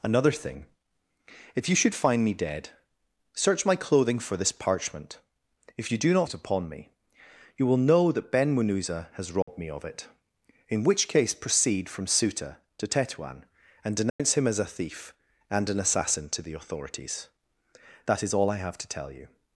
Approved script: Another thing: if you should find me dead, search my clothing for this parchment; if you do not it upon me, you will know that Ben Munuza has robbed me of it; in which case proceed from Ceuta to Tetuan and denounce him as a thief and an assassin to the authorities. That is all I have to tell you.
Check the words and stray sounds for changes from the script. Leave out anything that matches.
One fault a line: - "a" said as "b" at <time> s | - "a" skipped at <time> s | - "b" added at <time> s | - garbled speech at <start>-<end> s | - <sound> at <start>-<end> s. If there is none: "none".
- dropout at 9.4-9.5 s
- dropout at 14.1-14.2 s